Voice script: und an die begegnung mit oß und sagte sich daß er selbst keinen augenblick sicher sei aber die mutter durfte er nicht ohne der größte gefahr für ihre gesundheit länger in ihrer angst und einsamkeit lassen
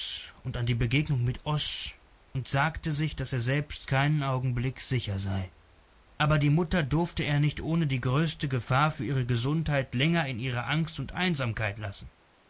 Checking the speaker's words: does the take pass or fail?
fail